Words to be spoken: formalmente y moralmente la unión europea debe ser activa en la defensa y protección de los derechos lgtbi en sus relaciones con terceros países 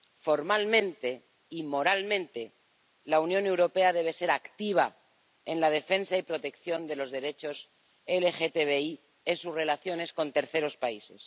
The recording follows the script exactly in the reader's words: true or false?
true